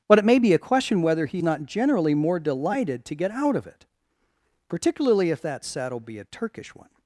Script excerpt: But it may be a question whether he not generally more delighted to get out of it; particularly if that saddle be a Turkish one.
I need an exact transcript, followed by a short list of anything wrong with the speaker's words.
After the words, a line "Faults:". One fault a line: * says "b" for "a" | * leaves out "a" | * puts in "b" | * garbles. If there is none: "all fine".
But it may be a question whether he not generally more delighted to get out of it; particularly if that saddle be a Turkish one.
Faults:
all fine